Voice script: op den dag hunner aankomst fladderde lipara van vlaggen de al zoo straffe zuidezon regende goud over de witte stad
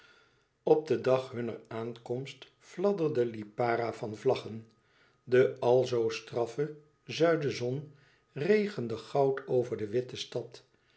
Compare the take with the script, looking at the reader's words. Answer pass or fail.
pass